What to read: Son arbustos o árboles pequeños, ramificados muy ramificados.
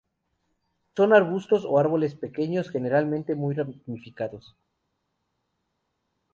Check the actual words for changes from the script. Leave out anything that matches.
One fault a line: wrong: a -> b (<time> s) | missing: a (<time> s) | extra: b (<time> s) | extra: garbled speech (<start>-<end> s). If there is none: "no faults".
wrong: ramificados -> generalmente (2.7 s)